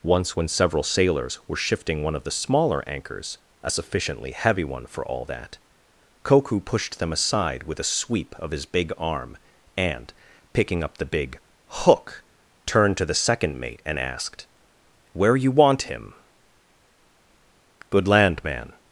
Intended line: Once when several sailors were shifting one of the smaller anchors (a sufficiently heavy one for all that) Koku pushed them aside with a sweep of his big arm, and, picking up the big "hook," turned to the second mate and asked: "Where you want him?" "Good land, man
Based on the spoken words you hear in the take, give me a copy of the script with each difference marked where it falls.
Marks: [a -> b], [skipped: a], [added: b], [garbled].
Once when several sailors were shifting one of the smaller anchors (a sufficiently heavy one for all that) Koku pushed them aside with a sweep of his big arm, and, picking up the big "hook," turned to the second mate and asked: "Where you want him?" "Good land, man